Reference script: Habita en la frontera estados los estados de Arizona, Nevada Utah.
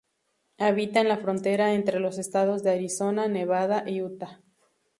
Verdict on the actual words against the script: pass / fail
fail